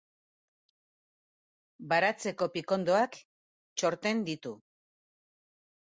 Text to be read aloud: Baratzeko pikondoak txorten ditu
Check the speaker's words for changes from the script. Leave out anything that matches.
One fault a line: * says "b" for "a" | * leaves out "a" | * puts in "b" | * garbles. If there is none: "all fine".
all fine